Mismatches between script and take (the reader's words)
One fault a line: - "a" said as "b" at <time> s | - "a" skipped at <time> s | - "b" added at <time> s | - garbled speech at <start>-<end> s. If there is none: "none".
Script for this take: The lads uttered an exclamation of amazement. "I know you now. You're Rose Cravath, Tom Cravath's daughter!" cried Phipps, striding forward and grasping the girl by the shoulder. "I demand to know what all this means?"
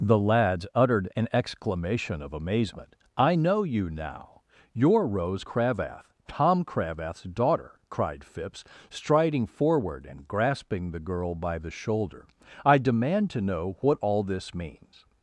none